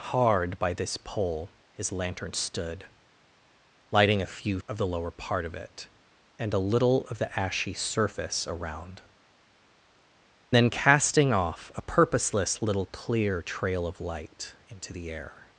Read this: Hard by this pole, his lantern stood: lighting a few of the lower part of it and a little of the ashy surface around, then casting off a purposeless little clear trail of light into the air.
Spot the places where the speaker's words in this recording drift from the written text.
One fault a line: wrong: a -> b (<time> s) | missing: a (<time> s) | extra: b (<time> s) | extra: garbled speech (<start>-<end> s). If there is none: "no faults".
no faults